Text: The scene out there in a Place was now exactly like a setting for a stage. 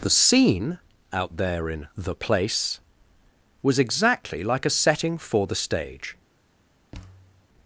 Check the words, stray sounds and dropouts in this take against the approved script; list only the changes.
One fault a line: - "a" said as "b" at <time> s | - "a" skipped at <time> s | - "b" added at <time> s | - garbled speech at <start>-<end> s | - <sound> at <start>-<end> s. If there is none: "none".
- "a" said as "the" at 2.0 s
- "now" skipped at 3.8 s
- "a" said as "the" at 5.5 s
- thud at 6.9-7.5 s